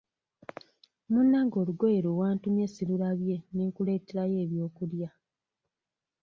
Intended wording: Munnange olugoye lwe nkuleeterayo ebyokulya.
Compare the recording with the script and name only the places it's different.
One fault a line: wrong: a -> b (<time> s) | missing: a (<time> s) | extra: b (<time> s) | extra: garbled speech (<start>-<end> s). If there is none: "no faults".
extra: wantumye sirulabye ne (2.2 s)